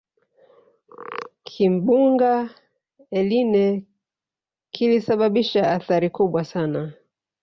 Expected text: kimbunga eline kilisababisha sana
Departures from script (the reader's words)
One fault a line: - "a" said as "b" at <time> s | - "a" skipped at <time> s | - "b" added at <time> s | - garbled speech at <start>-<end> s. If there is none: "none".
- "athari kubwa" added at 5.7 s